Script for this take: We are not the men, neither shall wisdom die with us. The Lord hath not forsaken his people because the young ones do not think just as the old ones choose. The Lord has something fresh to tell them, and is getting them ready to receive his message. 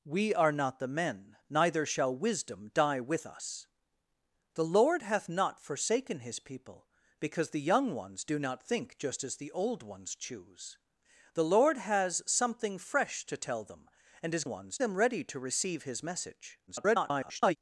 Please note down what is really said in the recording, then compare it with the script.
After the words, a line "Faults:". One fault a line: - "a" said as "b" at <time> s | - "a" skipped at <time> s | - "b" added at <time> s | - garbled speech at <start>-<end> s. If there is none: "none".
We are not the men, neither shall wisdom die with us. The Lord hath not forsaken his people because the young ones do not think just as the old ones choose. The Lord has something fresh to tell them, and is ones them ready to receive his message. [garbled]
Faults:
- "getting" said as "ones" at 14.5 s
- garbled speech at 16.7-17.6 s